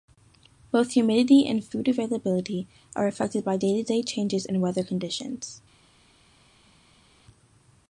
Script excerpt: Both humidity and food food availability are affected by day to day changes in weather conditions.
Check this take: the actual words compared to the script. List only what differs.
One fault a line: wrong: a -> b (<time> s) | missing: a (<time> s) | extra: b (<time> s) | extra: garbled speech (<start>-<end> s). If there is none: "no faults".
missing: food (1.9 s)